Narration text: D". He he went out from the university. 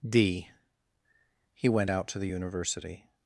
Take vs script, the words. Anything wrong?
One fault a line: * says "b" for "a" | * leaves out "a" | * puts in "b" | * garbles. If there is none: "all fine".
* leaves out "he"
* says "to" for "from"